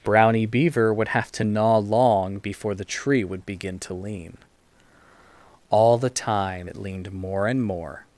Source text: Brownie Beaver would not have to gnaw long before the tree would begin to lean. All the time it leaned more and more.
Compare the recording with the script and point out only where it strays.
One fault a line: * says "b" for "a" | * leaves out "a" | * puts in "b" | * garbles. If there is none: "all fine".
* leaves out "not"